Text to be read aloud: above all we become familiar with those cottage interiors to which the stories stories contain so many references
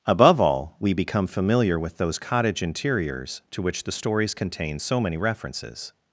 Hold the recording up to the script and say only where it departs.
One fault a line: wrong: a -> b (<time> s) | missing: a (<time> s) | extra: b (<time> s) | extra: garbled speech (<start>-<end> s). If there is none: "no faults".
missing: stories (4.3 s)